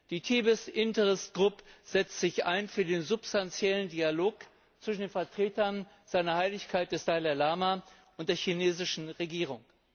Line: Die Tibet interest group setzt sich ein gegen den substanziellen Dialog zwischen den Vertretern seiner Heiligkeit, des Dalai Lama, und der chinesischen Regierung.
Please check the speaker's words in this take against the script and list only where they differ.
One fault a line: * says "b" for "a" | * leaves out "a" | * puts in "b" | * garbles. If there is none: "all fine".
* says "für" for "gegen"